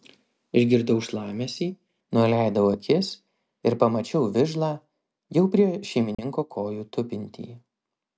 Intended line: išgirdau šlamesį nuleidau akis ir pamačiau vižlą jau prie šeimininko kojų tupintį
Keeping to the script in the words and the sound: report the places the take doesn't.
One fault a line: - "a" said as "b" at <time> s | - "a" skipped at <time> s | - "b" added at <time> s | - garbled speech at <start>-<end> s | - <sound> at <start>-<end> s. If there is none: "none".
- dropout at 6.1-6.2 s